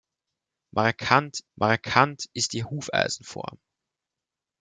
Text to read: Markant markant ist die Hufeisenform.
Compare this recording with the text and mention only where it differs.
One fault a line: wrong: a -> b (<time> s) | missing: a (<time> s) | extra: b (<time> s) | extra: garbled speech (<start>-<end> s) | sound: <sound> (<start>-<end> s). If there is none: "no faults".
no faults